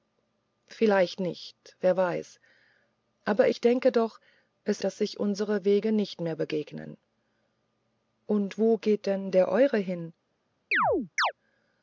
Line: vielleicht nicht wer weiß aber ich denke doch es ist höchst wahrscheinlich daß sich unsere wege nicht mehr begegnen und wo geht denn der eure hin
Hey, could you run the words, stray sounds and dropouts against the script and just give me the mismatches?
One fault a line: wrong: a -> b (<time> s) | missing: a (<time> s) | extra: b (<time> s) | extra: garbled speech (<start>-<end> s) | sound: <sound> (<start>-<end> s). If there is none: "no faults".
missing: ist höchst wahrscheinlich (4.8 s)
sound: chirp (10.7-11.3 s)